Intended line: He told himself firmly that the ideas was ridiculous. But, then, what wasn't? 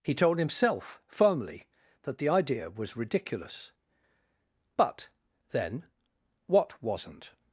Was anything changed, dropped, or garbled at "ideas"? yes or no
yes